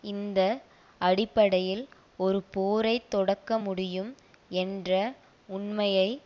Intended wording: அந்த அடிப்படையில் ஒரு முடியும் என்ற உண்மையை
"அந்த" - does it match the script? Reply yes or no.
no